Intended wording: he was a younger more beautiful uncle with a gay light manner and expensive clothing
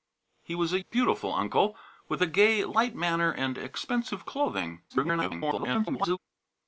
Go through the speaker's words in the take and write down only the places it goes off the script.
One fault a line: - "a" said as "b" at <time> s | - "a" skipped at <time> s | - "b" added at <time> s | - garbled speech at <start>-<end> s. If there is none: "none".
- "younger more" skipped at 0.8 s
- garbled speech at 4.9-6.2 s